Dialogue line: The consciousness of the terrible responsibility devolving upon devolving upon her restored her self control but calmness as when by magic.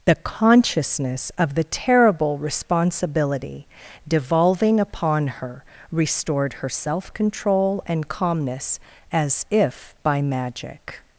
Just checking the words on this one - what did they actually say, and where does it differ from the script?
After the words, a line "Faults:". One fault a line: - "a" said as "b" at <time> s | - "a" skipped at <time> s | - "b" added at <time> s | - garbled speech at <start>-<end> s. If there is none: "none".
The consciousness of the terrible responsibility devolving upon her restored her self control and calmness as if by magic.
Faults:
- "devolving upon" skipped at 5.3 s
- "but" said as "and" at 7.8 s
- "when" said as "if" at 9.5 s